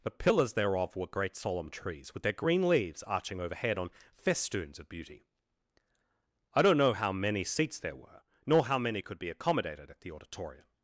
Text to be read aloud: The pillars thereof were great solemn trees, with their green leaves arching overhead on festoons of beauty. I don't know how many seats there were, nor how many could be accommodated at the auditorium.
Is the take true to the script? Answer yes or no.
yes